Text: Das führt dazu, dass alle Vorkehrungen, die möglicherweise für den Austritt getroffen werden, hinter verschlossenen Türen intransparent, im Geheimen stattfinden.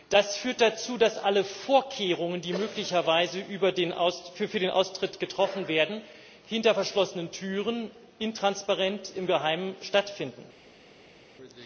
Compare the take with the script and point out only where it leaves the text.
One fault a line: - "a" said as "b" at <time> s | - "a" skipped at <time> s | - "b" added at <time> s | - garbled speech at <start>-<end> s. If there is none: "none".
none